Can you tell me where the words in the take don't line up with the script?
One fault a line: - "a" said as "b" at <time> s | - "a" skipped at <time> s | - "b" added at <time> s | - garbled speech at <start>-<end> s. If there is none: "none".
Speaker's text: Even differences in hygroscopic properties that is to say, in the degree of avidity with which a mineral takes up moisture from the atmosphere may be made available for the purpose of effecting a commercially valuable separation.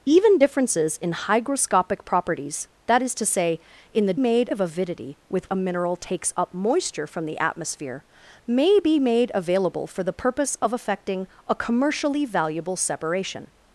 - "degree" said as "made" at 4.2 s
- "which" skipped at 5.5 s